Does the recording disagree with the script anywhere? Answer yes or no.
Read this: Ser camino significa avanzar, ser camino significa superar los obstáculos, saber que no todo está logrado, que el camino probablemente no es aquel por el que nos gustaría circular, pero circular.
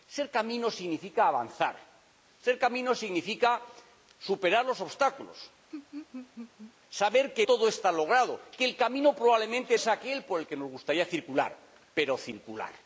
yes